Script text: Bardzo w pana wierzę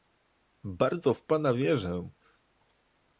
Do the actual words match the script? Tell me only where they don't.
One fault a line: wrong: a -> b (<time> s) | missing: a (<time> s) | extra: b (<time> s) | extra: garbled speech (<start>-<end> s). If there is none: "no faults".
no faults